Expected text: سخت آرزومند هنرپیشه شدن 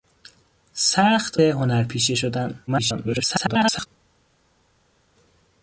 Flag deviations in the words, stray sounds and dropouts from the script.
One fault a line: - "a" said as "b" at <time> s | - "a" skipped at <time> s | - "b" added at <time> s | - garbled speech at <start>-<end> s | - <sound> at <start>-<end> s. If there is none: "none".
- "آرزومند" skipped at 1.4 s
- garbled speech at 2.7-3.9 s